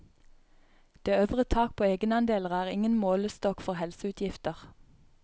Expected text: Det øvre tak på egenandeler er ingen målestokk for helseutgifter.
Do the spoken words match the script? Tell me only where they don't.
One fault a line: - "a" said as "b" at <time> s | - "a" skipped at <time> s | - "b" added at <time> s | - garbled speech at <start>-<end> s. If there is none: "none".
none